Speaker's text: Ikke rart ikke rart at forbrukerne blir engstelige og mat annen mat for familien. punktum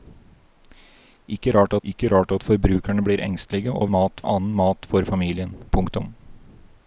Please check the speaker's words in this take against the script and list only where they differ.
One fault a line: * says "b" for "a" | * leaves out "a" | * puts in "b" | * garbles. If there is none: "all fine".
all fine